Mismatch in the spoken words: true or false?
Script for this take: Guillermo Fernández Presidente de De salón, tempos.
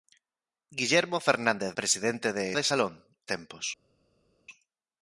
false